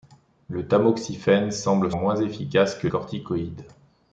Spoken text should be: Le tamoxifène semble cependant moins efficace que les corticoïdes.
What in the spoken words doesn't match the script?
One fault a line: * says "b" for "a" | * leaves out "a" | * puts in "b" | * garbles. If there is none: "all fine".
* leaves out "cependant"
* leaves out "les"